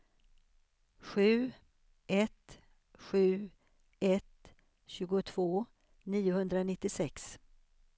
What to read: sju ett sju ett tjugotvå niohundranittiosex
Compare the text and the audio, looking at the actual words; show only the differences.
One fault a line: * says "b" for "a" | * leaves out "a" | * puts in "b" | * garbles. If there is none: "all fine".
all fine